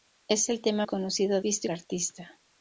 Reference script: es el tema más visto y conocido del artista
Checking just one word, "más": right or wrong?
wrong